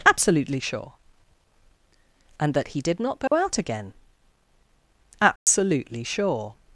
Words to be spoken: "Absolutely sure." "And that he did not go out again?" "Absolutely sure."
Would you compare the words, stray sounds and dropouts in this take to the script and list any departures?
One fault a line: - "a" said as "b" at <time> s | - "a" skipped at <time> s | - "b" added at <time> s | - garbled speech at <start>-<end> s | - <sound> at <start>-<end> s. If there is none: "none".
- dropout at 3.3-3.3 s
- dropout at 5.4-5.5 s